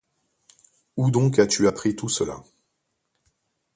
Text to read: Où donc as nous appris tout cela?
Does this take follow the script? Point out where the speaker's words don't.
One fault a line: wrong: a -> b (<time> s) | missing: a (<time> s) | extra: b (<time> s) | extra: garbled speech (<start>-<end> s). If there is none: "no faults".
wrong: nous -> tu (1.5 s)